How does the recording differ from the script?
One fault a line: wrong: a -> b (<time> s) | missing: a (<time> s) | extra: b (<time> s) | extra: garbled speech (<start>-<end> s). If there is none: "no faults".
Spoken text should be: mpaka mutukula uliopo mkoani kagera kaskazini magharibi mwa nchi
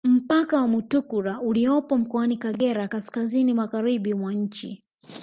extra: wa (0.6 s)